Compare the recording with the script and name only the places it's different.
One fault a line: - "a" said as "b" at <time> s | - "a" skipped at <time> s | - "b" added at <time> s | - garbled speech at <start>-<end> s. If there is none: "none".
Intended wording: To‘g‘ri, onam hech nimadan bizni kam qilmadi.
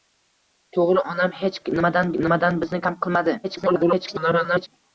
- "nimadan" added at 2.2 s
- garbled speech at 3.4-4.7 s